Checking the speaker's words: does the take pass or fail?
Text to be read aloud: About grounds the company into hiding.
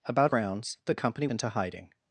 pass